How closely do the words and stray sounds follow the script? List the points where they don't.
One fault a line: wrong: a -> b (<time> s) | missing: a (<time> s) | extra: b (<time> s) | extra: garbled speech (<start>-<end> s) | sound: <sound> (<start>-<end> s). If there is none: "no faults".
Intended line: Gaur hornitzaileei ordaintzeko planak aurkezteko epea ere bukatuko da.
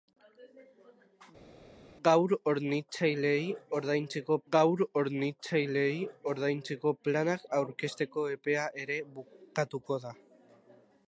extra: gaur hornitzaileei ordaintzeko (4.5 s)